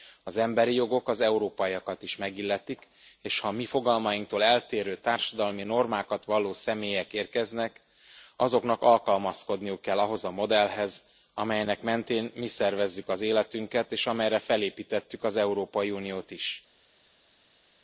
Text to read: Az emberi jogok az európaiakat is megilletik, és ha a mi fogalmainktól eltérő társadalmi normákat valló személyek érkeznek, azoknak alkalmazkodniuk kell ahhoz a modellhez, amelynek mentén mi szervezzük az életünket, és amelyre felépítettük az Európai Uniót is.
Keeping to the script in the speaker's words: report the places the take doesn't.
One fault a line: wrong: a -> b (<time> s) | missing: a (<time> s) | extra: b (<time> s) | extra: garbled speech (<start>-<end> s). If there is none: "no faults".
no faults